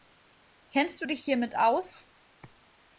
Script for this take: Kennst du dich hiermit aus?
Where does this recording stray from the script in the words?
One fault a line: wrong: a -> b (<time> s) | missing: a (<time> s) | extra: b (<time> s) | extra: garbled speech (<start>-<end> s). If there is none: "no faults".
no faults